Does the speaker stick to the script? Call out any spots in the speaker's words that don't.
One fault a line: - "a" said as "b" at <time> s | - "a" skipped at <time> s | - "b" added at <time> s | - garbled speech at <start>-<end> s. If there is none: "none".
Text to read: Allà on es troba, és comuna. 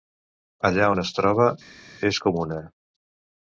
none